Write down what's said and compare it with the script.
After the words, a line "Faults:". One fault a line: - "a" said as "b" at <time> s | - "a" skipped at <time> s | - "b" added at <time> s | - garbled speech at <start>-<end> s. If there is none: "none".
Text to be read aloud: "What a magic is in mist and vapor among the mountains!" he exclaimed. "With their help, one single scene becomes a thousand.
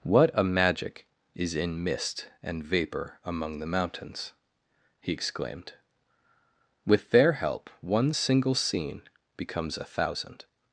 "What a magic is in mist and vapor among the mountains!" he exclaimed. "With their help, one single scene becomes a thousand.
Faults:
none